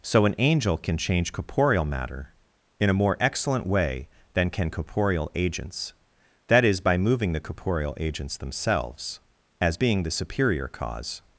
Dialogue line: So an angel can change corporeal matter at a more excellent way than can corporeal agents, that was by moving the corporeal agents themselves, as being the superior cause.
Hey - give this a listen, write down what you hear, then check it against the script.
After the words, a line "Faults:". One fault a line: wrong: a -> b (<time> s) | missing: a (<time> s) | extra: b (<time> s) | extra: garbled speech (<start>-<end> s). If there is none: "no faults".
So an angel can change corporeal matter in a more excellent way than can corporeal agents, that is by moving the corporeal agents themselves, as being the superior cause.
Faults:
wrong: at -> in (2.8 s)
wrong: was -> is (6.7 s)